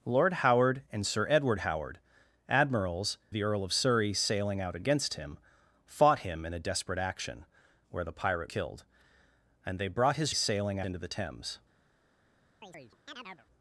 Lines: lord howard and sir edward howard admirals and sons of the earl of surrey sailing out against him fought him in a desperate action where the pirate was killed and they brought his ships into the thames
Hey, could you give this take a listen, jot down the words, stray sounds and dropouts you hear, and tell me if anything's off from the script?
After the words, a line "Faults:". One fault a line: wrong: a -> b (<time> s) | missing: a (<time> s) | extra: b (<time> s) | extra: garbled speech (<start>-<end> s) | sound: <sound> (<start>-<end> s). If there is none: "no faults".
lord howard and sir edward howard admirals the earl of surrey sailing out against him fought him in a desperate action where the pirate killed and they brought his sailing into the thames
Faults:
missing: and sons of (3.2 s)
missing: was (8.5 s)
wrong: ships -> sailing (10.3 s)
sound: chirp (12.6-13.5 s)